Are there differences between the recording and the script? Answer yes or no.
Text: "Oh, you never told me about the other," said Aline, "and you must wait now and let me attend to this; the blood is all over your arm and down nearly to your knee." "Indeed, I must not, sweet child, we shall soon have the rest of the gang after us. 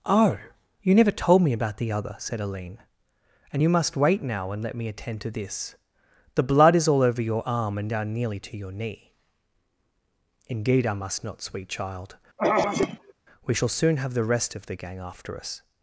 no